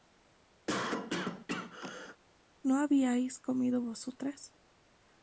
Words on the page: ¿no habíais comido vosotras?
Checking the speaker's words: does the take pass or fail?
pass